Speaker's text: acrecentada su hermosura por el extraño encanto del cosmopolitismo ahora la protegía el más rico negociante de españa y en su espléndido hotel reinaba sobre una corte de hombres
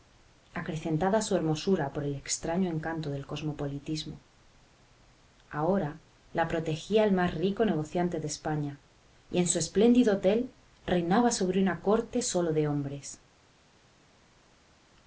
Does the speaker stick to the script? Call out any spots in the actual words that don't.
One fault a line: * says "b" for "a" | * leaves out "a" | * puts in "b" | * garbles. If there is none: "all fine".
* puts in "sólo"